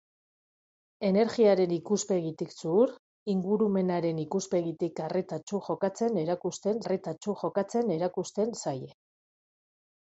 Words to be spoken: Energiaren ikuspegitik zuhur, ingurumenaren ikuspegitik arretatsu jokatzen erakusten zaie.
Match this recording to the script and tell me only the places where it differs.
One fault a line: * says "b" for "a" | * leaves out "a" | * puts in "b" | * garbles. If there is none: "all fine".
* puts in "arretatsu jokatzen erakusten"